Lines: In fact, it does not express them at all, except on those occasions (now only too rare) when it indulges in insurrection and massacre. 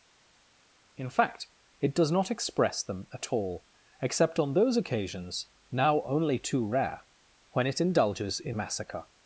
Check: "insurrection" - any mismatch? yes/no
yes